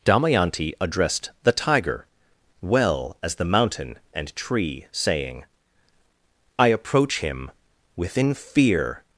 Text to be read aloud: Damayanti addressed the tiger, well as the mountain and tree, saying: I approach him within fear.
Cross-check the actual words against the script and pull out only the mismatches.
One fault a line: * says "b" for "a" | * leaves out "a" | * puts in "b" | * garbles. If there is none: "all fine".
all fine